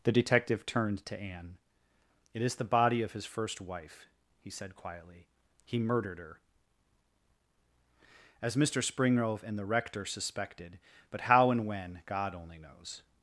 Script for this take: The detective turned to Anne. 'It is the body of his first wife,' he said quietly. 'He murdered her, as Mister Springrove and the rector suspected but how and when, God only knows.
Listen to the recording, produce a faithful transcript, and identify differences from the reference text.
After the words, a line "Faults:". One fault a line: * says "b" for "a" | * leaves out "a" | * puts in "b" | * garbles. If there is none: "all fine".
The detective turned to Anne. 'It is the body of his first wife,' he said quietly. 'He murdered her, as Mister Springrove and the rector suspected but how and when, God only knows.
Faults:
all fine